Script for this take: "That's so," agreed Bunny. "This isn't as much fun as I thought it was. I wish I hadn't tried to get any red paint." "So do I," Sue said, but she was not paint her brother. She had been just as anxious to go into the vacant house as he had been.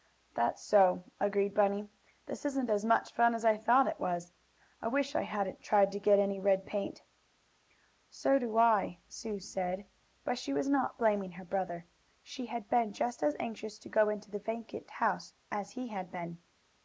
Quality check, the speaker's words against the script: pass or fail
fail